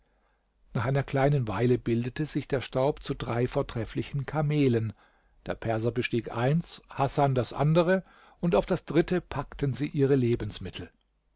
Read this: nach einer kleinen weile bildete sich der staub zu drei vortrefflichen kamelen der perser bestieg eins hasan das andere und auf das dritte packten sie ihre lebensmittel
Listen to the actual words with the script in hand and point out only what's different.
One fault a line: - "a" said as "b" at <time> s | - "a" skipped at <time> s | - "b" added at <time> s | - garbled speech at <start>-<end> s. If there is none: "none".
none